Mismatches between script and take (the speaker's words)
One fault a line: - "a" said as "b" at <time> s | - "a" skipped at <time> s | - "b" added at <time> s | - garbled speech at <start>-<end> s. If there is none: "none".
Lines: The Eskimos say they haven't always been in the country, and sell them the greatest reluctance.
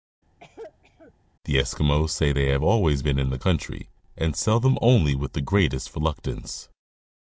- "haven't" said as "have" at 2.5 s
- "only with" added at 4.8 s